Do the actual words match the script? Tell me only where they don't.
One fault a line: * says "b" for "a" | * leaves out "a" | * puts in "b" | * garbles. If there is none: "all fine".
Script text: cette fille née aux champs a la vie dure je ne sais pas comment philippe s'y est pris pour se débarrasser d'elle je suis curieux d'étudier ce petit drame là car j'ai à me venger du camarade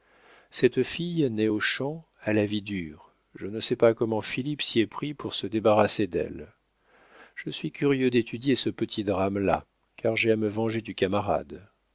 all fine